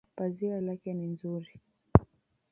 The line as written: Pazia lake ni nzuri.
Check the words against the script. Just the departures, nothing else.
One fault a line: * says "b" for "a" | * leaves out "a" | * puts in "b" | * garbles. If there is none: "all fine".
all fine